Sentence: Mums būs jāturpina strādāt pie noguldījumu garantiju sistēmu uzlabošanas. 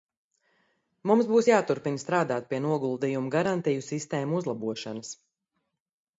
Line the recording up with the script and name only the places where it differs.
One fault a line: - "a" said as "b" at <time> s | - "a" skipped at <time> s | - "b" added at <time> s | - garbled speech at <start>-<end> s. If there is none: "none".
none